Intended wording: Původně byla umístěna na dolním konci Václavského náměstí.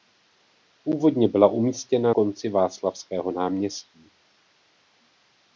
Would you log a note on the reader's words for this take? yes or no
yes